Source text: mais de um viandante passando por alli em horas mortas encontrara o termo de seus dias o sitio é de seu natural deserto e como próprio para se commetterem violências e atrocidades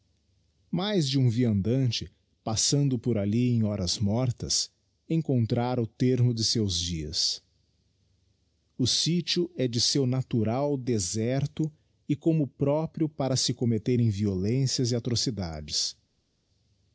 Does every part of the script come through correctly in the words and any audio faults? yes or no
yes